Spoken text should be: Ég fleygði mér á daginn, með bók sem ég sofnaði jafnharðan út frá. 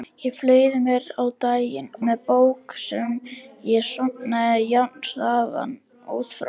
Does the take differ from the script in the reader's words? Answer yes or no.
no